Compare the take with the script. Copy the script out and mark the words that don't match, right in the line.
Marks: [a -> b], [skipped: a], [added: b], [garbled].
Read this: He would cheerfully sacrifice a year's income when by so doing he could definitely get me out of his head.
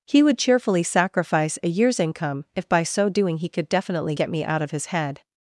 He would cheerfully sacrifice a year's income [when -> if] by so doing he could definitely get me out of his head.